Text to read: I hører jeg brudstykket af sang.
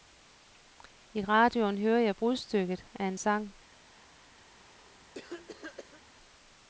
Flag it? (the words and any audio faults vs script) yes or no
yes